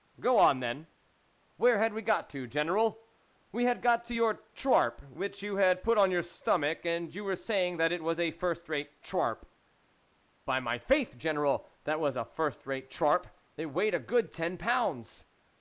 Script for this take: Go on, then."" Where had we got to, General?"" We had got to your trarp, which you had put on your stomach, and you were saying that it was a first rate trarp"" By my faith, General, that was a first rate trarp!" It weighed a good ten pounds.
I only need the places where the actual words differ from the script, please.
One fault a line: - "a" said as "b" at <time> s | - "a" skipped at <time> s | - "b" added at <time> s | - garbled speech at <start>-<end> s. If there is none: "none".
none